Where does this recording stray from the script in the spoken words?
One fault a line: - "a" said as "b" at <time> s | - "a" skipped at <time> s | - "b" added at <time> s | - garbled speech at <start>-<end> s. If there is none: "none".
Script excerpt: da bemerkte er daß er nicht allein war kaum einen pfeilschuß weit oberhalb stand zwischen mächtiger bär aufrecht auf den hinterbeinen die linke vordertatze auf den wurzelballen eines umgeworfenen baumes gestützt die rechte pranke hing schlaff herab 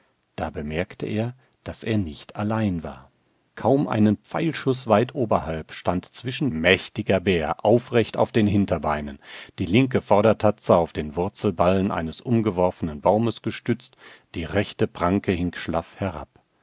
none